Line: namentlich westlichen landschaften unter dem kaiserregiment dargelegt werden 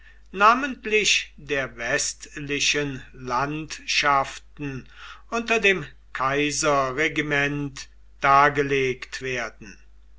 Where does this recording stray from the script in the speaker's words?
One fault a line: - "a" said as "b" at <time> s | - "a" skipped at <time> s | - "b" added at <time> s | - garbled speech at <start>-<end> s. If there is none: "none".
- "der" added at 1.4 s